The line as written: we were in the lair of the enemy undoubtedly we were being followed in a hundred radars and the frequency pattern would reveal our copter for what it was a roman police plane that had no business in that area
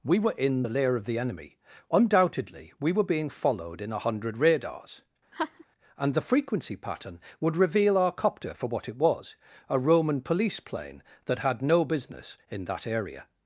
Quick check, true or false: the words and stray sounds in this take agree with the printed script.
false